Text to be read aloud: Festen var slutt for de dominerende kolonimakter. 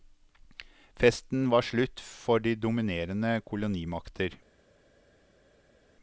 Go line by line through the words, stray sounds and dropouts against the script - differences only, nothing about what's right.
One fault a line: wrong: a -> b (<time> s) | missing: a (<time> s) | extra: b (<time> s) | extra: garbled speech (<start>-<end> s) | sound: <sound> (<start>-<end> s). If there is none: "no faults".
no faults